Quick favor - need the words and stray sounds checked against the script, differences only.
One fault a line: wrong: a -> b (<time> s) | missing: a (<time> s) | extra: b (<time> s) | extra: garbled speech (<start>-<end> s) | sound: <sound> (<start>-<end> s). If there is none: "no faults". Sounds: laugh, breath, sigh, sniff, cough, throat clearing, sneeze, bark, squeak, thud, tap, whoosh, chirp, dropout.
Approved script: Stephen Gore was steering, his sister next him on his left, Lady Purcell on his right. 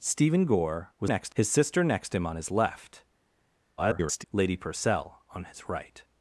wrong: steering -> next (1.0 s)
extra: garbled speech (3.8-4.2 s)